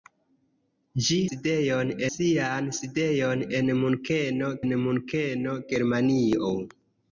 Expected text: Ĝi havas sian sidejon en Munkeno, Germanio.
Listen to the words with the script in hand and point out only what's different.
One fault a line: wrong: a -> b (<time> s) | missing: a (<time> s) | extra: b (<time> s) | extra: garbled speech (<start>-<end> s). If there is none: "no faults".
wrong: havas -> sidejon (1.3 s)
extra: en Munkeno (4.7 s)